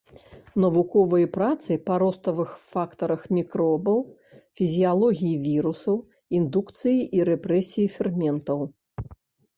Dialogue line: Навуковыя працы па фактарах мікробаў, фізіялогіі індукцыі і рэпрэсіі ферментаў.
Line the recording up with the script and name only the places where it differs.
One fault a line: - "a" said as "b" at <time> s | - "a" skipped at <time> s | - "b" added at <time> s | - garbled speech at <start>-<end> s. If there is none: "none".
- "роставых" added at 2.0 s
- "вірусаў" added at 5.5 s